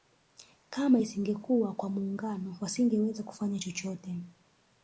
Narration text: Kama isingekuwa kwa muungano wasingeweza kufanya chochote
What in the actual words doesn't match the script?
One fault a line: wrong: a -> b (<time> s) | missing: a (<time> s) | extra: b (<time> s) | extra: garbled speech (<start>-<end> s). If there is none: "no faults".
no faults